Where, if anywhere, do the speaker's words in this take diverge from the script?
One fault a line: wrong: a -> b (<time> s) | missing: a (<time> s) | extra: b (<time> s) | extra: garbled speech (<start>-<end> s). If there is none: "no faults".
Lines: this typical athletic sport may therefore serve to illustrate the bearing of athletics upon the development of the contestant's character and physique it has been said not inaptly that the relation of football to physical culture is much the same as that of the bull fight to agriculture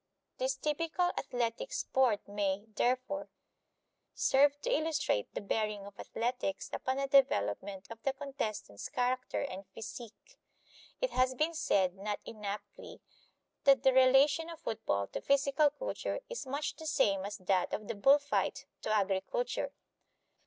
no faults